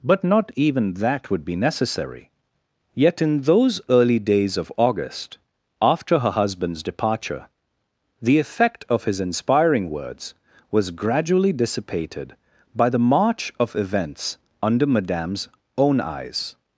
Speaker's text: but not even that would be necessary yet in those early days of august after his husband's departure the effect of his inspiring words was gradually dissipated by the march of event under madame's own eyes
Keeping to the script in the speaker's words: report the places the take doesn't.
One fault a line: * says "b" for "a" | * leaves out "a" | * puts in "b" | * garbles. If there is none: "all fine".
* says "her" for "his"
* says "events" for "event"